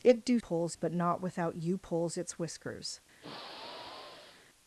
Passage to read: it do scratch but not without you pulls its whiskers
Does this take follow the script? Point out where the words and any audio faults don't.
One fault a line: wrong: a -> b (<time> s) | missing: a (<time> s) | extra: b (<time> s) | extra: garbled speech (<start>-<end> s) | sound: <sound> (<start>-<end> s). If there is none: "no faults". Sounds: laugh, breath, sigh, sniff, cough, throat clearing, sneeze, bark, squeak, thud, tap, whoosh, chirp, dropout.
wrong: scratch -> pulls (0.4 s)
sound: sigh (3.2-4.5 s)